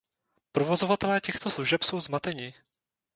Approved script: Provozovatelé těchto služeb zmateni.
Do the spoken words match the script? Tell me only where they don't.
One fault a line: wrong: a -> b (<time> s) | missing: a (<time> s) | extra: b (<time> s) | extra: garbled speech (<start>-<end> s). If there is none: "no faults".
extra: jsou (1.8 s)